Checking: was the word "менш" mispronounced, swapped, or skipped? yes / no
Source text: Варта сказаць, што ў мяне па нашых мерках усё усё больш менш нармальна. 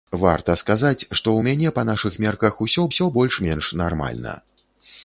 no